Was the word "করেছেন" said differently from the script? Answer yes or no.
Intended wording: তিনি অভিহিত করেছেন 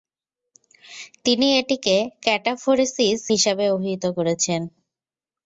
no